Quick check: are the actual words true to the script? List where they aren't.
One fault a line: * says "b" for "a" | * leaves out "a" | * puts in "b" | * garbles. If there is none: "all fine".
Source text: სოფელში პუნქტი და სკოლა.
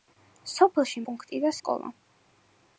all fine